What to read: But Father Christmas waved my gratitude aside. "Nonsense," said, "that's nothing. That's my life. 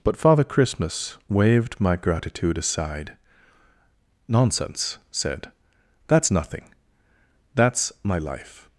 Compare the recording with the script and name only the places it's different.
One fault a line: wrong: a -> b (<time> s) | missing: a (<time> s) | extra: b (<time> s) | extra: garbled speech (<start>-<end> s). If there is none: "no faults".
no faults